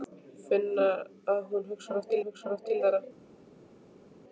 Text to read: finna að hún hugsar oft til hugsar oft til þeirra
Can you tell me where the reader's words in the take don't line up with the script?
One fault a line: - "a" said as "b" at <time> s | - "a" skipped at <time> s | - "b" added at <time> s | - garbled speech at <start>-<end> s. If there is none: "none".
none